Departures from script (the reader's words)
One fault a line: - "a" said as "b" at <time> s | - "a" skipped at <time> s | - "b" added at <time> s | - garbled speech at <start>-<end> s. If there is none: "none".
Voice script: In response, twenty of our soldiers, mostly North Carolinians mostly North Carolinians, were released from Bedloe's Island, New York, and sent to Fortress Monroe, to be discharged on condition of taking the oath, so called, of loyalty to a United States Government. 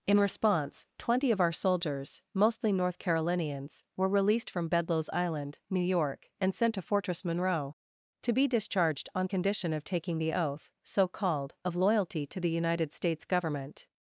- "mostly North Carolinians" skipped at 3.8 s
- "a" said as "the" at 12.4 s